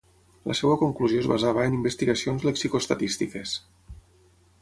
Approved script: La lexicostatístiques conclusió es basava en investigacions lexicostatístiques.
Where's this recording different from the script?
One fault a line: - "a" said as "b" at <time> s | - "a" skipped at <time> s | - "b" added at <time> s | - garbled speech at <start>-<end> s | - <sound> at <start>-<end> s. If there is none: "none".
- "lexicostatístiques" said as "seva" at 0.6 s